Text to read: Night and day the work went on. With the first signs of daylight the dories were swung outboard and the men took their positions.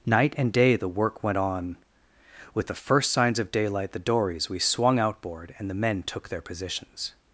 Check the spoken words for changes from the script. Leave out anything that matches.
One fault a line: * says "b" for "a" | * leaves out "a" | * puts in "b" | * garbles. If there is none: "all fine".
* says "we" for "were"